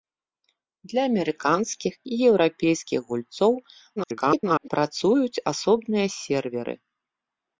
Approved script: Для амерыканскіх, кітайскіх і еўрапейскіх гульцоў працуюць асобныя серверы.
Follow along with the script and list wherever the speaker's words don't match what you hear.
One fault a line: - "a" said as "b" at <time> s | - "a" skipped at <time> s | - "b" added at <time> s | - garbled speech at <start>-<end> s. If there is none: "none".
- "кітайскіх" skipped at 1.9 s
- garbled speech at 4.0-4.7 s